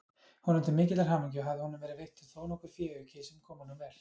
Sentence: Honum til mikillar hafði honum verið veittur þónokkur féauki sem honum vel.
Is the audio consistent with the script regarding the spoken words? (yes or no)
no